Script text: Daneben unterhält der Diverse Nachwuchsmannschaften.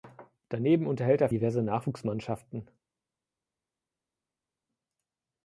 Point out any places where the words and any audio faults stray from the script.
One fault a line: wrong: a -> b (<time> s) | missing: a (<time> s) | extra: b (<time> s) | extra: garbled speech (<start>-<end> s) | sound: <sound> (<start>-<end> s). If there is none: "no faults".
no faults